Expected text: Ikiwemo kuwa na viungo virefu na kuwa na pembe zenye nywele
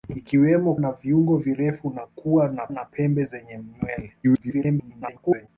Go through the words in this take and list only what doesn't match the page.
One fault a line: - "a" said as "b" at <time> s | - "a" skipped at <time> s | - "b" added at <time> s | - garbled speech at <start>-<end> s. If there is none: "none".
- "kuwa" skipped at 0.8 s
- "na" added at 2.7 s
- garbled speech at 4.2-5.5 s